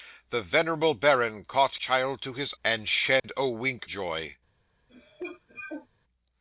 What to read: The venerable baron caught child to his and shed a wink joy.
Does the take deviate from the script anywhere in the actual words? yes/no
no